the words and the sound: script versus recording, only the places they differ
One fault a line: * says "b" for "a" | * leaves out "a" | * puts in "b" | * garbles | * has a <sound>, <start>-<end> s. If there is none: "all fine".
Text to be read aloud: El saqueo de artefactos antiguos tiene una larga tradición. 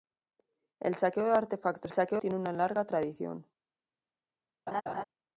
* says "saqueo" for "antiguos"
* has a laugh, 4.7-5.0 s